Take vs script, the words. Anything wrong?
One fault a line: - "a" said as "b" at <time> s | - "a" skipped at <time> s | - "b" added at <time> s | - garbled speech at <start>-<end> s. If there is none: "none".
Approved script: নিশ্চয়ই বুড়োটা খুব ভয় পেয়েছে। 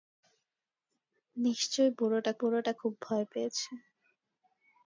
- "বুড়োটা" added at 2.4 s